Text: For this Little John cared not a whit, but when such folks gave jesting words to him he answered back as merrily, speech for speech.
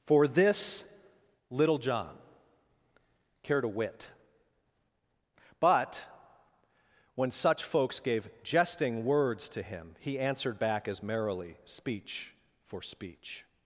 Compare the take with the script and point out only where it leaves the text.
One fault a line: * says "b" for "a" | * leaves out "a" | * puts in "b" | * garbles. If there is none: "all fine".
* leaves out "not"